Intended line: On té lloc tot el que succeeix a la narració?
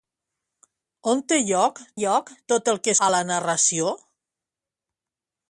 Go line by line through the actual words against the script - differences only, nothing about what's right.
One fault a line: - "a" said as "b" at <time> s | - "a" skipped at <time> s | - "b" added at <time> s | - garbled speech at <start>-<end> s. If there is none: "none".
- "lloc" added at 2.0 s
- "succeeix" skipped at 2.9 s